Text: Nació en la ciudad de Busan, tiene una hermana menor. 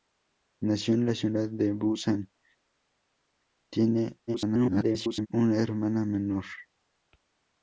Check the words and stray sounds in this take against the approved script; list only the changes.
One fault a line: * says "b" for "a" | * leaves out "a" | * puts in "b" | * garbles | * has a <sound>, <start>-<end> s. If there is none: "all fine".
* garbles